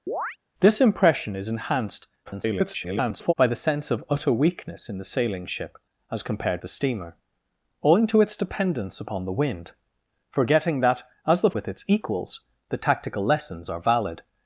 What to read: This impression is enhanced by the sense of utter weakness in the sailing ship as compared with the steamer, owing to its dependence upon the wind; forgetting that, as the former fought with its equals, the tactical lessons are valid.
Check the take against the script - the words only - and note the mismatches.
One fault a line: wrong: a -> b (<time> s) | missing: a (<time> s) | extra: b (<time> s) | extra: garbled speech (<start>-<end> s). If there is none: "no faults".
extra: garbled speech (2.3-3.3 s)
missing: with (6.6 s)
missing: former fought (11.5 s)